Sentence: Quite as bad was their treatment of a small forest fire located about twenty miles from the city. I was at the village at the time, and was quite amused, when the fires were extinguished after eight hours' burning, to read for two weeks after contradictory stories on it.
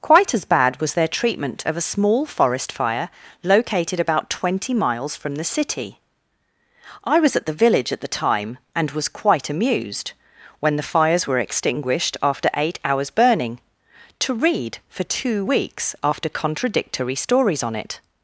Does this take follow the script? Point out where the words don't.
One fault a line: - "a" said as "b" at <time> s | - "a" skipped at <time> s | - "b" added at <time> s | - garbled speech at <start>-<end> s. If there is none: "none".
none